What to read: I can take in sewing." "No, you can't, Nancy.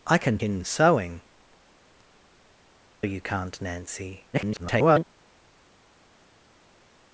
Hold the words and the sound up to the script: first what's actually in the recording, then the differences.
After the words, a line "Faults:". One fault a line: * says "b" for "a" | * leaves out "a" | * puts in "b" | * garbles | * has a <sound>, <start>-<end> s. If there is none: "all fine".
I can in sewing." "You can't, Nancy. [garbled]
Faults:
* leaves out "take"
* leaves out "No"
* garbles